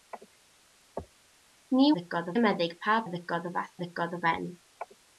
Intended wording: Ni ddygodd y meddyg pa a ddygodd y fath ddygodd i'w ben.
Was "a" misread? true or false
false